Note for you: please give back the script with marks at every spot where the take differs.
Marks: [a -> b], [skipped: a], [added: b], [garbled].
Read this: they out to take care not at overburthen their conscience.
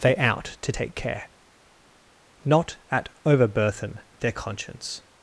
they out to take care not at overburthen their conscience.